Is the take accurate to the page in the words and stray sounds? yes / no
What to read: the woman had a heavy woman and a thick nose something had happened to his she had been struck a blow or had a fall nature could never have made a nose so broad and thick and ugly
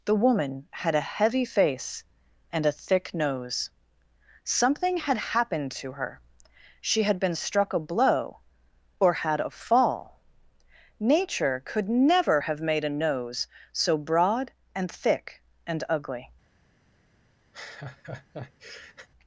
no